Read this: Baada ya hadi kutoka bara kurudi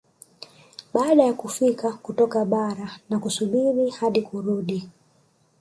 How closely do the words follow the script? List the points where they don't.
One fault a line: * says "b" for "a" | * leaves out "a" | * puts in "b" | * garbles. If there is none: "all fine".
* says "kufika" for "hadi"
* puts in "na kusubiri hadi"